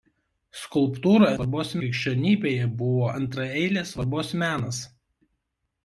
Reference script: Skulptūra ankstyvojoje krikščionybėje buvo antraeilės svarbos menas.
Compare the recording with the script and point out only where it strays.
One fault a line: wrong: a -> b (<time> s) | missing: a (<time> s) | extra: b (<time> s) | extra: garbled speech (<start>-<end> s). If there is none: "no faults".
wrong: ankstyvojoje -> svarbos (1.4 s)